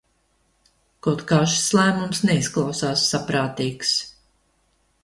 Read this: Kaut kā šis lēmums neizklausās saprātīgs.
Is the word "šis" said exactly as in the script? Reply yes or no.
yes